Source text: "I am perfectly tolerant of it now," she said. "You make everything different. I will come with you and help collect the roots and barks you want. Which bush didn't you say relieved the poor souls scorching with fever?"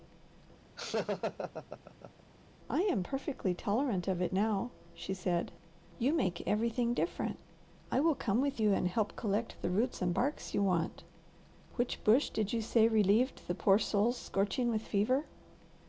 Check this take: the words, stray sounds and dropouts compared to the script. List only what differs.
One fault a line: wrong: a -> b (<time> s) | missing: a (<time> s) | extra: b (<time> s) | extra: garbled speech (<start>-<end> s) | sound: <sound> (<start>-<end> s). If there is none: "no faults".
sound: laugh (0.8-2.2 s)
wrong: didn't -> did (12.3 s)